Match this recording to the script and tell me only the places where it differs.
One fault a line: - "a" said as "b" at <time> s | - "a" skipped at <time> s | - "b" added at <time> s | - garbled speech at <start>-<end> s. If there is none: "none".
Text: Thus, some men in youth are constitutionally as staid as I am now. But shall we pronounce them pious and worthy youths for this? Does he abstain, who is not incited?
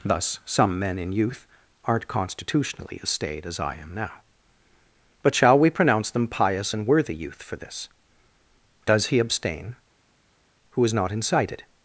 - "are" said as "aren't" at 1.9 s
- "youths" said as "youth" at 7.2 s